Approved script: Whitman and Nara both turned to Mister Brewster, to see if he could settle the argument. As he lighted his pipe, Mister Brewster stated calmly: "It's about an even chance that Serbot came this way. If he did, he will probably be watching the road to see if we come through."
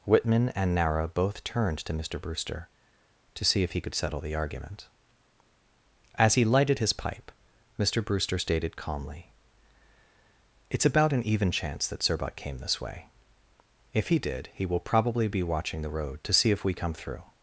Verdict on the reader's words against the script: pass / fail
pass